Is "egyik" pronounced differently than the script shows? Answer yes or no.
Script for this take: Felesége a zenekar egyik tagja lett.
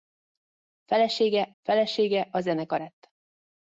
yes